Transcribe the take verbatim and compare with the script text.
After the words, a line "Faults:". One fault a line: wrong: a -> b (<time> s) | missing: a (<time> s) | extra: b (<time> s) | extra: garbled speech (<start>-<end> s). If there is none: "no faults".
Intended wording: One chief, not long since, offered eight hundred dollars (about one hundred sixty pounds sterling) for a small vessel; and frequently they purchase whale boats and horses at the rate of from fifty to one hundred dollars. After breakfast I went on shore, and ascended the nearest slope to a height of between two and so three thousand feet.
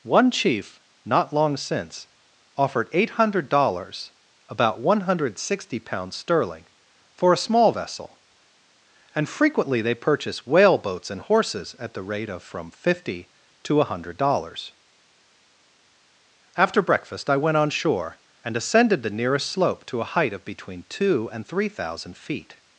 One chief, not long since, offered eight hundred dollars (about one hundred sixty pounds sterling) for a small vessel; and frequently they purchase whale boats and horses at the rate of from fifty to one hundred dollars. After breakfast I went on shore, and ascended the nearest slope to a height of between two and three thousand feet.
Faults:
missing: so (21.5 s)